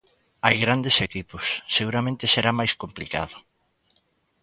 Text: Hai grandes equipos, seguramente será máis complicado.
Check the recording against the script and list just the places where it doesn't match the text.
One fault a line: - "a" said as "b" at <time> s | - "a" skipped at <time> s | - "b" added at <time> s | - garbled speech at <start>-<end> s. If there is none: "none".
none